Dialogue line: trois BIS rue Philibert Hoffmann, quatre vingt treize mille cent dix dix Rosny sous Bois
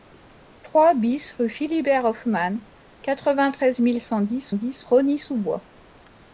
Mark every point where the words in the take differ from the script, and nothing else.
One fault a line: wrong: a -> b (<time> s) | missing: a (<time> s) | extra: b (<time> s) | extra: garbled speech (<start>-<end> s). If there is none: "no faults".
no faults